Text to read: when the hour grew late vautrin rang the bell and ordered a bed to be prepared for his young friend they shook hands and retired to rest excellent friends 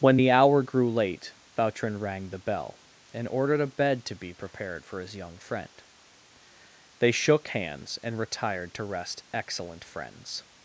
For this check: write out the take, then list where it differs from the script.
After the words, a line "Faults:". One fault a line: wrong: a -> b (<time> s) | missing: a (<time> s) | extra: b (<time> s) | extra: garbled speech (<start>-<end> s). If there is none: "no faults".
when the hour grew late vautrin rang the bell and ordered a bed to be prepared for his young friend they shook hands and retired to rest excellent friends
Faults:
no faults